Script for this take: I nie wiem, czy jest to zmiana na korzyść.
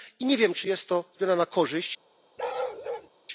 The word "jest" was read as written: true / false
true